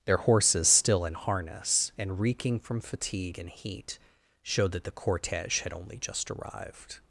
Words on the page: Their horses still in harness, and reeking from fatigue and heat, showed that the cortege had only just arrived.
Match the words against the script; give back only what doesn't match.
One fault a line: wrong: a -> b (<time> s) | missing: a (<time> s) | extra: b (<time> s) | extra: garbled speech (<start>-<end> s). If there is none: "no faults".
no faults